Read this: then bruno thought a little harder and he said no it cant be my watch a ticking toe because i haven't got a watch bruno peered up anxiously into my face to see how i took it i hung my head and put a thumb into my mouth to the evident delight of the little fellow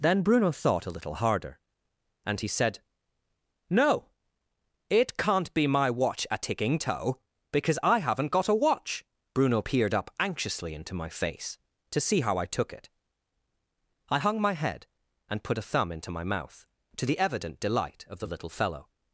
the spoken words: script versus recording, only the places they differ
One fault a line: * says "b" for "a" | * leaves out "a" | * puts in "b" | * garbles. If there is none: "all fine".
all fine